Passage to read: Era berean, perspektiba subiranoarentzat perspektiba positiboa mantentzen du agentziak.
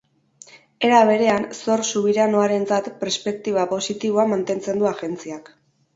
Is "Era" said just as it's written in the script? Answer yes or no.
yes